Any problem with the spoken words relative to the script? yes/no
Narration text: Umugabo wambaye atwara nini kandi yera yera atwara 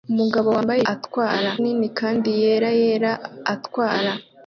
no